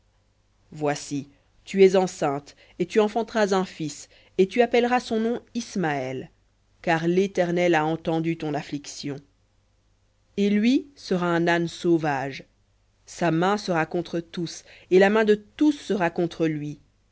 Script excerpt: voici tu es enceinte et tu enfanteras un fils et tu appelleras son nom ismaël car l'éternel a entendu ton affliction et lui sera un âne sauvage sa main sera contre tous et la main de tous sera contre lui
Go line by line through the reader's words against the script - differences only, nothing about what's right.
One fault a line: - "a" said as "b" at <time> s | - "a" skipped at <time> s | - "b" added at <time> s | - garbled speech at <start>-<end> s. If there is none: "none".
none